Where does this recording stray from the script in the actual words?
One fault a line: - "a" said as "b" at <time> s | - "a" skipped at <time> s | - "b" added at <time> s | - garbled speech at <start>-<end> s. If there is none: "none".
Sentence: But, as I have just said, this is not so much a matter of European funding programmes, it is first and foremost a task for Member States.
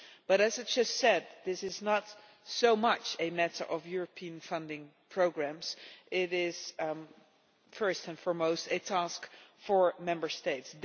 none